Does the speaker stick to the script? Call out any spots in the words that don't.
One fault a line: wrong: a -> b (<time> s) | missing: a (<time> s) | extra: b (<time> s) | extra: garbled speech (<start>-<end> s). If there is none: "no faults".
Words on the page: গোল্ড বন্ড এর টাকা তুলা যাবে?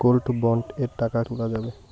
no faults